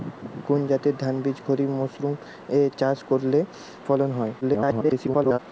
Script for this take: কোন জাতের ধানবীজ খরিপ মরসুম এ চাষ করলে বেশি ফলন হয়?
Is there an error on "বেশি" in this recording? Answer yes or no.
yes